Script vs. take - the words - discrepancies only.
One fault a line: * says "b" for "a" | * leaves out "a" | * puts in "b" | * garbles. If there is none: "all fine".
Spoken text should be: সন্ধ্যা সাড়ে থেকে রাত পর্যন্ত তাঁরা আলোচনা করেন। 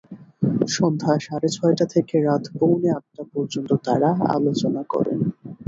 * puts in "ছয়টা"
* puts in "পৌনে আটটা"